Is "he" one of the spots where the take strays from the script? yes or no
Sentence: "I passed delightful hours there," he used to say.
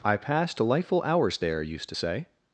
yes